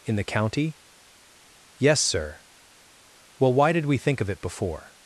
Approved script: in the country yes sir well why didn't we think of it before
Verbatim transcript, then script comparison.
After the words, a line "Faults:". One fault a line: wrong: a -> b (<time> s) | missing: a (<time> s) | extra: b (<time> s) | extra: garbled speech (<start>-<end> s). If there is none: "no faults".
in the county yes sir well why did we think of it before
Faults:
wrong: country -> county (0.2 s)
wrong: didn't -> did (3.7 s)